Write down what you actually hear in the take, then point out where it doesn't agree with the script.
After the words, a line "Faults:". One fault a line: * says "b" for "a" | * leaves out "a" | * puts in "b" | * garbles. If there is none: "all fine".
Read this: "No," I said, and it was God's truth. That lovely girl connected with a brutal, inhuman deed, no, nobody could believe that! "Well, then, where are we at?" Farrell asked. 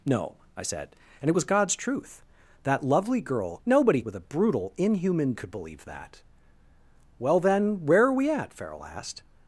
"No," I said, and it was God's truth. That lovely girl nobody with a brutal, inhuman could believe that! "Well, then, where are we at?" Farrell asked.
Faults:
* says "nobody" for "connected"
* leaves out "deed no nobody"